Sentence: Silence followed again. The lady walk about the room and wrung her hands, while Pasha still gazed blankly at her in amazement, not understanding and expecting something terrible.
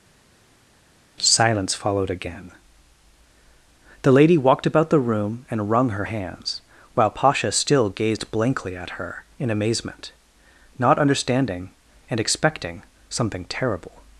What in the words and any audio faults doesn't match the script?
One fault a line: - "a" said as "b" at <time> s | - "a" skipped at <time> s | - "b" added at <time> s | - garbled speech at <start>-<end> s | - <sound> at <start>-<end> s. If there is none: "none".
- "walk" said as "walked" at 4.4 s